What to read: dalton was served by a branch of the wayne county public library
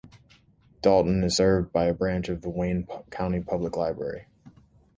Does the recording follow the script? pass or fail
fail